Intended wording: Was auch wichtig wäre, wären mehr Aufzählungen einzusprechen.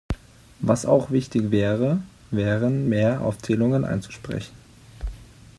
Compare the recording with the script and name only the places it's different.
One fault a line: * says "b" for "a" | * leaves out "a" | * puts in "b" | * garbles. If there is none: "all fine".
all fine